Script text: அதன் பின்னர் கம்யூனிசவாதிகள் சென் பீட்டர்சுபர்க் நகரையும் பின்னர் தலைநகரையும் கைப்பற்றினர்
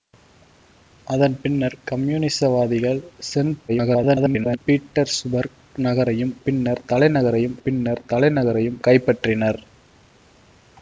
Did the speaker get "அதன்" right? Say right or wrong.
right